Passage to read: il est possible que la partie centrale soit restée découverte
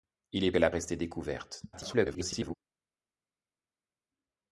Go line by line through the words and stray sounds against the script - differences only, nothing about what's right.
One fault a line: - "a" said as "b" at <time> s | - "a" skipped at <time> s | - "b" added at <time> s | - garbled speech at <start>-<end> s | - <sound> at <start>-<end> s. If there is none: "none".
- "possible" skipped at 0.5 s
- "partie centrale soit" skipped at 0.7 s
- garbled speech at 1.7-2.6 s